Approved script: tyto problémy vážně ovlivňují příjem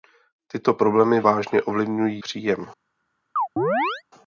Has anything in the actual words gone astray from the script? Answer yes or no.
no